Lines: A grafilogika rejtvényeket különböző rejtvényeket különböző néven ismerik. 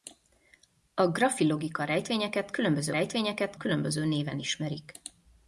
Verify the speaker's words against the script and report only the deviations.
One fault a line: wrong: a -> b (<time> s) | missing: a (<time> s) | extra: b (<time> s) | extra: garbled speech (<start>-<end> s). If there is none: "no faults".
no faults